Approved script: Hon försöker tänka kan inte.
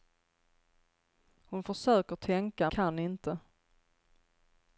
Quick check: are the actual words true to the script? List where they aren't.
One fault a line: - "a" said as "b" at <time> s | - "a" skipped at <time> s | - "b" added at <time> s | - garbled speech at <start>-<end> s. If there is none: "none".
none